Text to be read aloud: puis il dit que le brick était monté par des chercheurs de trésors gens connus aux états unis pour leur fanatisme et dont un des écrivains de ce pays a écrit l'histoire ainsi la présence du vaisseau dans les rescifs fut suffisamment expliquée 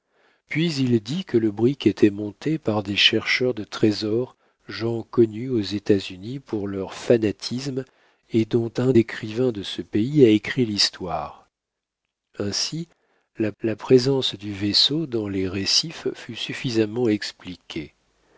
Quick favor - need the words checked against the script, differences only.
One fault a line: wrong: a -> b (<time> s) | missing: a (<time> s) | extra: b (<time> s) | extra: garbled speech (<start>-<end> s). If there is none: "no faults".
missing: des (8.9 s)
extra: la (13.6 s)